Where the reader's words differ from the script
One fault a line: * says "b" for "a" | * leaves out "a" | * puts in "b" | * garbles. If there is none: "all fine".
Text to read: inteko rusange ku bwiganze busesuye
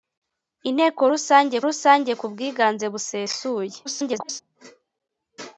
* puts in "rusange"
* garbles